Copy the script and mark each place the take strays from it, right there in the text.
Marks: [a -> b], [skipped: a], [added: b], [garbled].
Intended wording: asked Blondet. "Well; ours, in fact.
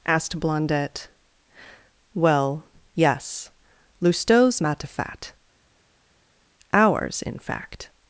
asked Blondet. "Well; [added: yes Lousteau's Matifat] ours, in fact.